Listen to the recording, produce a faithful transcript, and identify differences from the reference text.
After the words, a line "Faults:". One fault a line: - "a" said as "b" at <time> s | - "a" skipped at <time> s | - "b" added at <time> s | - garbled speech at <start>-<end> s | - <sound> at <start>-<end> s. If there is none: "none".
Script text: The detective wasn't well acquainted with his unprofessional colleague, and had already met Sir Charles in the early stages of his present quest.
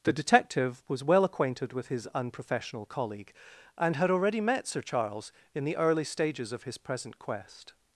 The detective was well acquainted with his unprofessional colleague, and had already met Sir Charles in the early stages of his present quest.
Faults:
- "wasn't" said as "was" at 0.9 s